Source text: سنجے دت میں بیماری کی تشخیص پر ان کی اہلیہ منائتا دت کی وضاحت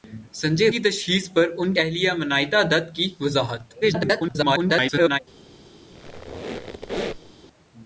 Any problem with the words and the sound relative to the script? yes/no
yes